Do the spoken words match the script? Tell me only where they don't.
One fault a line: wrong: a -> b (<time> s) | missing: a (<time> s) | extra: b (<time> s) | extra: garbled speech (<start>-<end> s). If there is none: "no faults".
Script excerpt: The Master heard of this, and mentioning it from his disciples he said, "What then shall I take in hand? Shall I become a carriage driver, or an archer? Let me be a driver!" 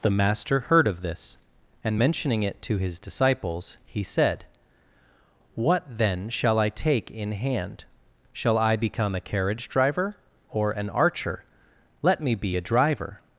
wrong: from -> to (2.6 s)